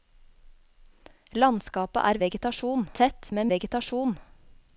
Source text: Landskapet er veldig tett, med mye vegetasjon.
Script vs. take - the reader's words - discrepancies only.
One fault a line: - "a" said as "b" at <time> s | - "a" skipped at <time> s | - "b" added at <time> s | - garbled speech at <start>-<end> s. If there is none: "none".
- "veldig" said as "vegetasjon" at 2.2 s
- "mye" skipped at 3.5 s